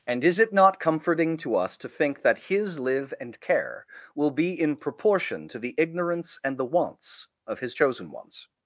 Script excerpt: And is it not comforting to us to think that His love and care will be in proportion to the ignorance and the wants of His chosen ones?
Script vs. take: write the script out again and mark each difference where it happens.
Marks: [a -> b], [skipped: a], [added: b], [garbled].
And is it not comforting to us to think that His [love -> live] and care will be in proportion to the ignorance and the wants of His chosen ones?